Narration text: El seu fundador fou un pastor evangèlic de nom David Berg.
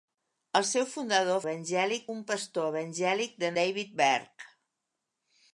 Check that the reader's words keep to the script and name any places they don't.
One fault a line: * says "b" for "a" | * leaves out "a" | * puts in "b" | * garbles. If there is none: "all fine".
* says "evangèlic" for "fou"
* leaves out "nom"